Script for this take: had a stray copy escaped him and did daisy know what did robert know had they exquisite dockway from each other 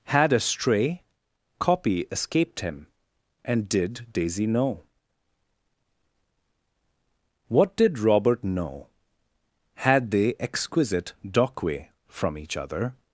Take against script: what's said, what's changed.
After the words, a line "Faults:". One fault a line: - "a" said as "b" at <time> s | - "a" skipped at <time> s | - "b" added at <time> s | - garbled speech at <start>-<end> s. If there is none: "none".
had a stray copy escaped him and did daisy know what did robert know had they exquisite dockway from each other
Faults:
none